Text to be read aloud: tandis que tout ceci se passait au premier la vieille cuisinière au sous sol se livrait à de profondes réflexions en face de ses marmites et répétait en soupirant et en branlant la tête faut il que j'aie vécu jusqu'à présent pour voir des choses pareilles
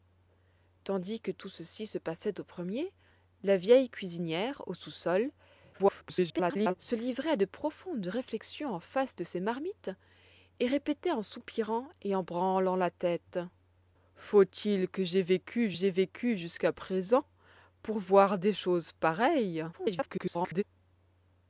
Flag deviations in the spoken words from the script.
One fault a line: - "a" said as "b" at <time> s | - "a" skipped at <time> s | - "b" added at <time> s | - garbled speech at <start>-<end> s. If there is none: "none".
- garbled speech at 5.7-6.7 s
- "j'aie vécu" added at 15.7 s
- garbled speech at 19.7-20.6 s